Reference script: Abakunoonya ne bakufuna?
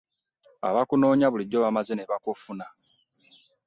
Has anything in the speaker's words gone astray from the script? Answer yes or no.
yes